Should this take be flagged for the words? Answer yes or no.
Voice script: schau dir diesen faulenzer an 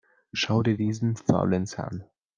no